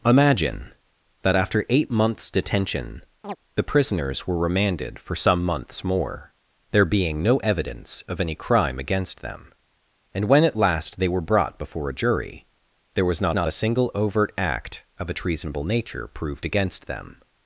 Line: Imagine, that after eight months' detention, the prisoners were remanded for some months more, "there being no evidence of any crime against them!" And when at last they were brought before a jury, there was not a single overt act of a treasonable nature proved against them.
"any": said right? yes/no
yes